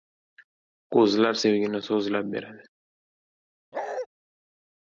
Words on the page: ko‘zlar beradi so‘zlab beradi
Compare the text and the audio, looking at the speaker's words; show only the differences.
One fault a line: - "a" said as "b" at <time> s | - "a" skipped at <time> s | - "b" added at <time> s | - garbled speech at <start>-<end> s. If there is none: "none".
- "beradi" said as "sevgini" at 1.4 s